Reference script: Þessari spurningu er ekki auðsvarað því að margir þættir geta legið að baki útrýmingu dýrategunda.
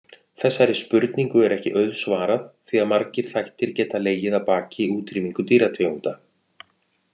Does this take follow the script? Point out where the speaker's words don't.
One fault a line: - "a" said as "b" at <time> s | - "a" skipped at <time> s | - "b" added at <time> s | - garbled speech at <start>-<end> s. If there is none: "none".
none